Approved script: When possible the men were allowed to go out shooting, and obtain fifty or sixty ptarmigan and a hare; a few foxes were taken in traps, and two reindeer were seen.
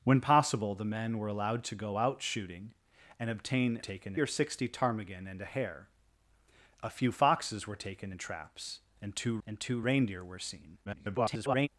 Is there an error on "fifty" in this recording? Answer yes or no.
yes